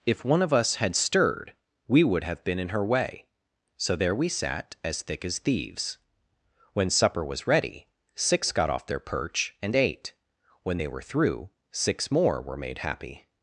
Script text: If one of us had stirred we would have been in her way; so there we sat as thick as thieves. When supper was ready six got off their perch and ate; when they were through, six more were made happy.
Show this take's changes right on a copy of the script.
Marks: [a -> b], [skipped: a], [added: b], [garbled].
If one of us had stirred we would have been in her way; so there we sat as thick as thieves. When supper was ready six got off their perch and ate; when they were through, six more were made happy.